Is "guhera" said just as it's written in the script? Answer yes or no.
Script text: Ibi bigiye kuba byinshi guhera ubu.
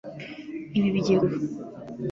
no